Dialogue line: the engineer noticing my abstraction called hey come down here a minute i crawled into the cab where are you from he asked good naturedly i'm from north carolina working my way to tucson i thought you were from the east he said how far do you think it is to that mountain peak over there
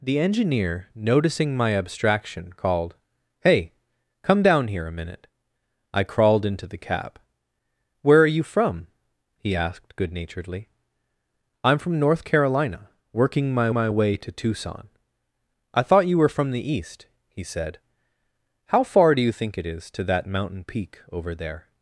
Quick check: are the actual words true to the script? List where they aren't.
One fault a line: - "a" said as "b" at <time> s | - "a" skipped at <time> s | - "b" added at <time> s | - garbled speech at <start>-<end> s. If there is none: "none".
- "my" added at 13.7 s